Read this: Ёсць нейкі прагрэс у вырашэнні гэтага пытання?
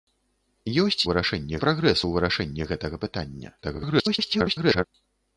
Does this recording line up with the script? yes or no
no